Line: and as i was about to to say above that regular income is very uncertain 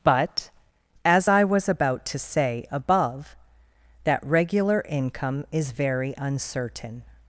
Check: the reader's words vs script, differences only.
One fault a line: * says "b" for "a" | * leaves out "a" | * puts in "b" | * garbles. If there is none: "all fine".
* says "but" for "and"
* leaves out "to"